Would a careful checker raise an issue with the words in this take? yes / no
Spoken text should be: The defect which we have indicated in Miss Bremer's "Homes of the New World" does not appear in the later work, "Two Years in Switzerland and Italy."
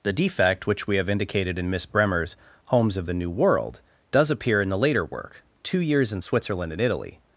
yes